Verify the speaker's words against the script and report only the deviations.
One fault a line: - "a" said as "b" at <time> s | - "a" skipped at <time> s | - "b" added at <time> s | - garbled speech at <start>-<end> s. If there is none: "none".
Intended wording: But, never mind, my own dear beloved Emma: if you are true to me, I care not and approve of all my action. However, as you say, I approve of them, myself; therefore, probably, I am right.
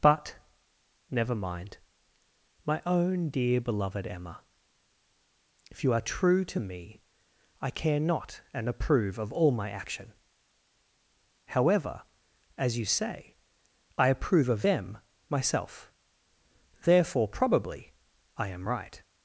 none